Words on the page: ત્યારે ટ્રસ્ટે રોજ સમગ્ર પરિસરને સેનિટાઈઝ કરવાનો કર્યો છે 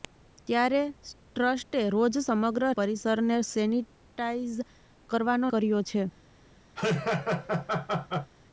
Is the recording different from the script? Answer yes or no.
no